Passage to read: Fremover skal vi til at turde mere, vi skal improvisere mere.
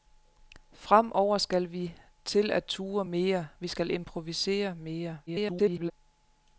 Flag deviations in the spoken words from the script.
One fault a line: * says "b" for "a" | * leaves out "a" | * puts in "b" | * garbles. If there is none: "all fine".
* garbles